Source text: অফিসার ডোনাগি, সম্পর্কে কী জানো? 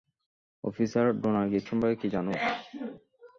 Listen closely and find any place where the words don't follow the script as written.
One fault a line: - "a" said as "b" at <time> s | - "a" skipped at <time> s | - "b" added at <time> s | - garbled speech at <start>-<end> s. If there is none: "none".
none